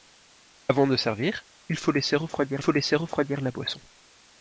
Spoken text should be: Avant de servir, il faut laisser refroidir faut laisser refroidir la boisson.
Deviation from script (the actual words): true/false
false